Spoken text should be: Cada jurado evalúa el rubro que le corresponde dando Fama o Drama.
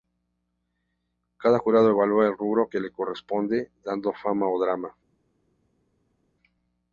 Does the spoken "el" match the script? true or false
true